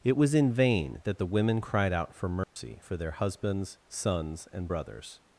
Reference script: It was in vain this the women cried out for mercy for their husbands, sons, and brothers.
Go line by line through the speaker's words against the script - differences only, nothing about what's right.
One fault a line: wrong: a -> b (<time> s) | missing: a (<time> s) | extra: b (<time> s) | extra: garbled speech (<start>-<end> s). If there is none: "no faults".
wrong: this -> that (1.0 s)